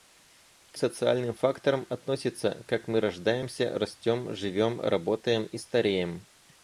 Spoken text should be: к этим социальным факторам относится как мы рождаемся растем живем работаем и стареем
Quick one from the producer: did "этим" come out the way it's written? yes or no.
no